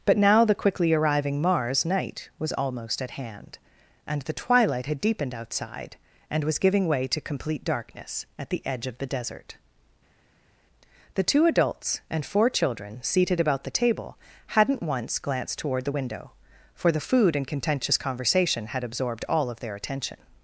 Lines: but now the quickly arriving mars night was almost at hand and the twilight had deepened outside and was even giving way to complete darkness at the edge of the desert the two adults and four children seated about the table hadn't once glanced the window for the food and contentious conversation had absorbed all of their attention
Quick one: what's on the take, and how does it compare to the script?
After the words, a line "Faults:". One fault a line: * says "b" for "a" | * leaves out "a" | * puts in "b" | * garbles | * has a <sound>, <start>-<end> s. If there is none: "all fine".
but now the quickly arriving mars night was almost at hand and the twilight had deepened outside and was giving way to complete darkness at the edge of the desert the two adults and four children seated about the table hadn't once glanced toward the window for the food and contentious conversation had absorbed all of their attention
Faults:
* leaves out "even"
* puts in "toward"